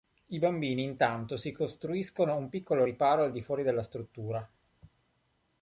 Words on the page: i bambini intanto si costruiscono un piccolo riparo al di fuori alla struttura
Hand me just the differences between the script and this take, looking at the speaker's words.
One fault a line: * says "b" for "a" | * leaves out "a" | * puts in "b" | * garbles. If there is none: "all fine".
* says "della" for "alla"